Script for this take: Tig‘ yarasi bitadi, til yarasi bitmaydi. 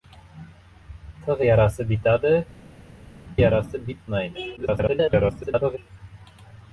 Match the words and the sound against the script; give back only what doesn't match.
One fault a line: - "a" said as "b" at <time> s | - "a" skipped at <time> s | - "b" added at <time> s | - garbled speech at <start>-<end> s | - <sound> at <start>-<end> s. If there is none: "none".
- "til" skipped at 2.3 s
- garbled speech at 4.6-5.8 s